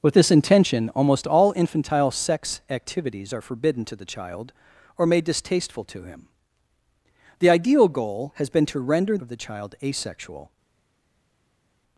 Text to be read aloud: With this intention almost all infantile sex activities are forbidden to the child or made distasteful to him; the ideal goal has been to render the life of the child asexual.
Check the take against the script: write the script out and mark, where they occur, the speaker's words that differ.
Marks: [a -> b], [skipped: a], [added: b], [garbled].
With this intention almost all infantile sex activities are forbidden to the child or made distasteful to him; the ideal goal has been to render [skipped: the life] of the child asexual.